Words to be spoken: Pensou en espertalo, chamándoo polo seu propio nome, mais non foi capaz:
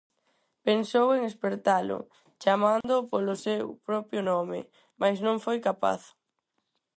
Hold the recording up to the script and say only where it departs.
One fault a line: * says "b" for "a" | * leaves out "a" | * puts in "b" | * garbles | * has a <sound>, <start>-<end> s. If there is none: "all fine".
* has a dropout, 2.8-2.8 s